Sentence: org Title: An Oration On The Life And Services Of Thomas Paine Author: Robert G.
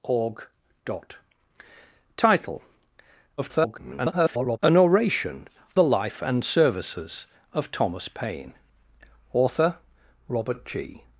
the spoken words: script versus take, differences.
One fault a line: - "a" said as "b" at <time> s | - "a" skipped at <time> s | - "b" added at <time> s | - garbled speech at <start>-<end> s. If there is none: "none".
- garbled speech at 3.4-4.6 s
- "On" skipped at 5.5 s